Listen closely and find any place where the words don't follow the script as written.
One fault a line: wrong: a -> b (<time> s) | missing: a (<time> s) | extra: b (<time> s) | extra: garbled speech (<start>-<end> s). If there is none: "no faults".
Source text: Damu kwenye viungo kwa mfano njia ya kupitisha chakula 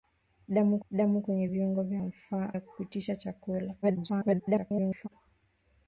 extra: damu (0.9 s)
missing: kwa mfano njia (1.8 s)
extra: garbled speech (3.8-5.1 s)